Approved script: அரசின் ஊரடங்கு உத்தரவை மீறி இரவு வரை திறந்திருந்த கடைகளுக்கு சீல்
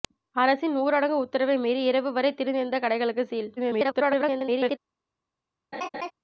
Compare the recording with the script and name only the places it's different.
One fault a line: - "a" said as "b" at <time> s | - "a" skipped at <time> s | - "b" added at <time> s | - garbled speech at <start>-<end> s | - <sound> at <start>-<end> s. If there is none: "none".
- garbled speech at 3.6-4.8 s
- laugh at 5.7-6.1 s